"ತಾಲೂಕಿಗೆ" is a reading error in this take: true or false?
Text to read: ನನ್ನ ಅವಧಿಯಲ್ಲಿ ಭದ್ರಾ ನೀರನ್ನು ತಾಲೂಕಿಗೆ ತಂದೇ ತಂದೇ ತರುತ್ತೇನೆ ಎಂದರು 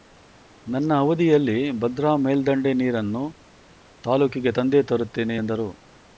false